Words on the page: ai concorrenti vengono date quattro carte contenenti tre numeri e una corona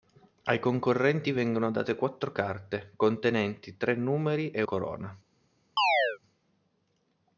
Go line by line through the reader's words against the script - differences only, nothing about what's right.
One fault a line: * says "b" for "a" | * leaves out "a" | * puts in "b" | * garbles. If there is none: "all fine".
* leaves out "una"